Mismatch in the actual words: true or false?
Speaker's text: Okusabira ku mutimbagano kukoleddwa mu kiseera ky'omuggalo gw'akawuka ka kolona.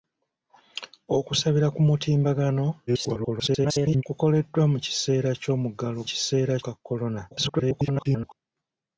true